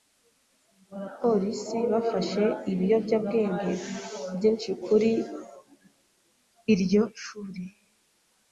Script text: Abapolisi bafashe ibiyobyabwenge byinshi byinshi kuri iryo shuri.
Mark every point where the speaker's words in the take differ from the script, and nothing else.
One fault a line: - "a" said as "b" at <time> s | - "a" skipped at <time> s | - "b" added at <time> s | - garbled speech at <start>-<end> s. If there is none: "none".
- "byinshi" skipped at 4.7 s